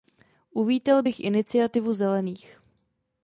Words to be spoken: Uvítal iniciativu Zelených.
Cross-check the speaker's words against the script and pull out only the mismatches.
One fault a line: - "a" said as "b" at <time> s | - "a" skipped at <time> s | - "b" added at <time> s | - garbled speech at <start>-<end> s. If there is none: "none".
- "bych" added at 1.0 s